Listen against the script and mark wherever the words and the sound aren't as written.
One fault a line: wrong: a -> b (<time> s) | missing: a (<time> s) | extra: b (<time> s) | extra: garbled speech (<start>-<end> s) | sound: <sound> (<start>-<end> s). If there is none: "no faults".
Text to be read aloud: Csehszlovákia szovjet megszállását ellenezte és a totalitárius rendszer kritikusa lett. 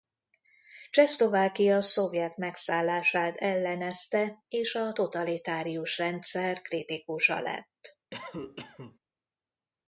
sound: cough (8.1-9.0 s)